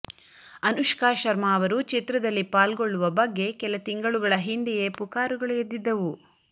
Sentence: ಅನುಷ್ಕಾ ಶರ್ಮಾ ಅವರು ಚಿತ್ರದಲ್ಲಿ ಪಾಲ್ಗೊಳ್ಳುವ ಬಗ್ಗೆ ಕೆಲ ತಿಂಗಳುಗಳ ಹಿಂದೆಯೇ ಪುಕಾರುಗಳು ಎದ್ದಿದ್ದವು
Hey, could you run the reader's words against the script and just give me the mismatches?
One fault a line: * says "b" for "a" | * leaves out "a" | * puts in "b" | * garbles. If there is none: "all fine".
all fine